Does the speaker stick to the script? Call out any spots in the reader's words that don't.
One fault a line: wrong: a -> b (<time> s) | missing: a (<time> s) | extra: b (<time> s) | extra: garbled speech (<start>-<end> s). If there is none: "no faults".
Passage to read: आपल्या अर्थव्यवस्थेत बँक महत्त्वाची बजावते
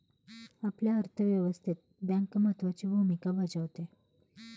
extra: भूमिका (2.9 s)